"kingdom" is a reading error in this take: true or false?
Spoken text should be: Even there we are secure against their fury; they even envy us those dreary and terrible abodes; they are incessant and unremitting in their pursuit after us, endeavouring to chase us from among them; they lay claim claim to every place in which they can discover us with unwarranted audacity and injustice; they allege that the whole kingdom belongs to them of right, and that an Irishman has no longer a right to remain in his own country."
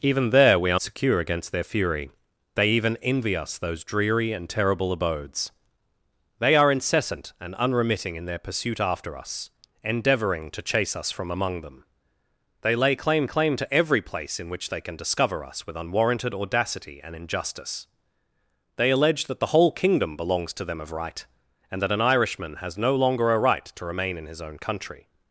false